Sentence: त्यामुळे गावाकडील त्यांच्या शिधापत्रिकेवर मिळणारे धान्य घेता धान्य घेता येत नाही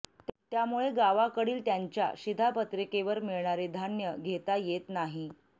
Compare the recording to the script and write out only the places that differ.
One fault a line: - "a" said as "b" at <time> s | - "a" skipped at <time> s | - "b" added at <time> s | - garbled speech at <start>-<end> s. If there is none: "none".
- "धान्य घेता" skipped at 4.5 s